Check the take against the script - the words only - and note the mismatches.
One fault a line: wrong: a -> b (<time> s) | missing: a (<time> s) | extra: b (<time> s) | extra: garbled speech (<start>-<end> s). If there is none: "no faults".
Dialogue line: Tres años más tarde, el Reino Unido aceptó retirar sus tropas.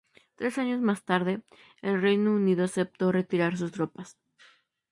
no faults